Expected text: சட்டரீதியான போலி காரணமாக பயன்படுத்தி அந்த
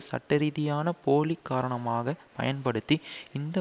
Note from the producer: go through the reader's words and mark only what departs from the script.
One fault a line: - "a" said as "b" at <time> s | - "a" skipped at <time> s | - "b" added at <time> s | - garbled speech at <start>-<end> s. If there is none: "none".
- "அந்த" said as "இந்த" at 3.3 s